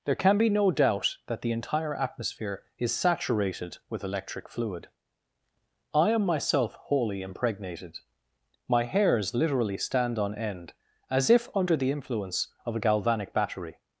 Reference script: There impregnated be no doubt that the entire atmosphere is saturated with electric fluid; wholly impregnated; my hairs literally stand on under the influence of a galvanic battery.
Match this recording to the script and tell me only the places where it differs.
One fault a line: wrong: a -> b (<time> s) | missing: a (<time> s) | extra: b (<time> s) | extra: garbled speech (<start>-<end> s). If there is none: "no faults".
wrong: impregnated -> can (0.1 s)
extra: I am myself (5.9 s)
extra: end as if (10.3 s)